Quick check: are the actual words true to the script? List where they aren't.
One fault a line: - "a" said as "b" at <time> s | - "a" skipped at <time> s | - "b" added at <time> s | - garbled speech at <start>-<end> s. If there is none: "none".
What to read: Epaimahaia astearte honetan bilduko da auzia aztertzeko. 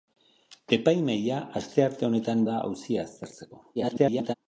- "bilduko" skipped at 2.5 s
- garbled speech at 3.8-4.3 s